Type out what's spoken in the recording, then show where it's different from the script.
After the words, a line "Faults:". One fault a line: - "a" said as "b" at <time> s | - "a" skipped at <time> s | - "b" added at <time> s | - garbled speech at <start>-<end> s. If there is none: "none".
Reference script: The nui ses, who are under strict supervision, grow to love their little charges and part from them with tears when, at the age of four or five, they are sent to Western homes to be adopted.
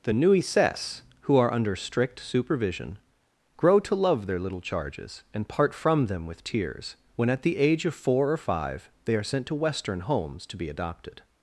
The nui ses, who are under strict supervision, grow to love their little charges and part from them with tears when, at the age of four or five, they are sent to Western homes to be adopted.
Faults:
none